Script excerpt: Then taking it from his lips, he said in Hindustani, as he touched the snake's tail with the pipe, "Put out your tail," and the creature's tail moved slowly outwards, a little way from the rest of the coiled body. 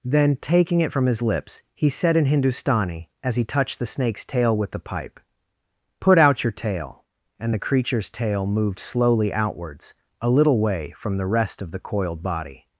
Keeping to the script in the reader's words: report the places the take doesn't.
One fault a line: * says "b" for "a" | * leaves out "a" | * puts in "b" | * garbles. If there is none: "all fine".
all fine